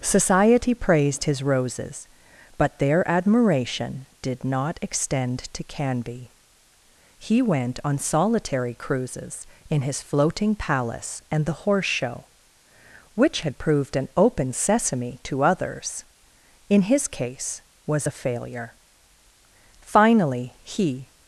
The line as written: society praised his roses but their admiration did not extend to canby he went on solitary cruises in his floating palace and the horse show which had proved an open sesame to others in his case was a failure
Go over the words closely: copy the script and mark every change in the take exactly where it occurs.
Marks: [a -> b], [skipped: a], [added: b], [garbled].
society praised his roses but their admiration did not extend to canby he went on solitary cruises in his floating palace and the horse show which had proved an open sesame to others in his case was a failure [added: finally he]